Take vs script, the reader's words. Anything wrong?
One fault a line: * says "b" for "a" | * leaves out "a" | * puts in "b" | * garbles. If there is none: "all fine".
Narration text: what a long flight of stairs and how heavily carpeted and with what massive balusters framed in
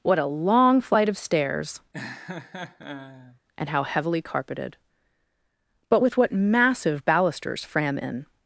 * says "but" for "and"
* says "fram" for "framed"